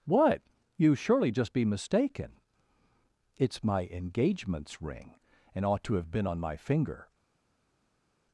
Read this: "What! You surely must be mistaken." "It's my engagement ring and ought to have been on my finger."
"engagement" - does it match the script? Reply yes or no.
no